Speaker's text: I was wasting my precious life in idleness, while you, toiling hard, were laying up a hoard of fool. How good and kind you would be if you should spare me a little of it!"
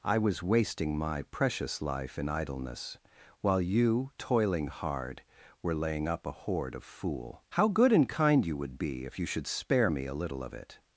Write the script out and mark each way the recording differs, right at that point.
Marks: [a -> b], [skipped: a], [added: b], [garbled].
I was wasting my precious life in idleness, while you, toiling hard, were laying up a hoard of fool. How good and kind you would be if you should spare me a little of it!"